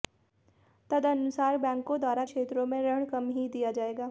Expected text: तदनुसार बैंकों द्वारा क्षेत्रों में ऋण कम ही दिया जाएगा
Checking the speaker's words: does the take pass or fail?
pass